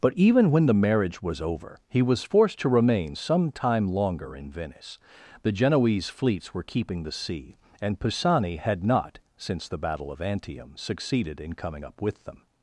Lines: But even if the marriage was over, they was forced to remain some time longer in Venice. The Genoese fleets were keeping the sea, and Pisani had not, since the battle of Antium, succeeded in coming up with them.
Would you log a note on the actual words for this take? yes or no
yes